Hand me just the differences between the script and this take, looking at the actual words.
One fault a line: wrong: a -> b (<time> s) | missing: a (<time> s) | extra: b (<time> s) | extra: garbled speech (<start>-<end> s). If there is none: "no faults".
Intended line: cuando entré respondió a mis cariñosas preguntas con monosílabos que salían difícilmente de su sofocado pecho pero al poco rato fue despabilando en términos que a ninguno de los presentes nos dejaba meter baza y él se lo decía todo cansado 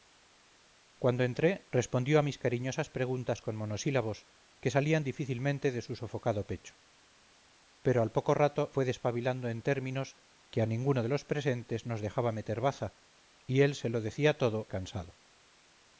no faults